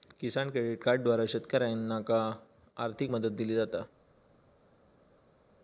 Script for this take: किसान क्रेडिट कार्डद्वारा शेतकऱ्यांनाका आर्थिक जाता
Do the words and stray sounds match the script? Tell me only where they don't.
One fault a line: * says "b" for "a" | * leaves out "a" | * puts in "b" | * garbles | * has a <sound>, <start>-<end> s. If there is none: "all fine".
* puts in "मदत दिली"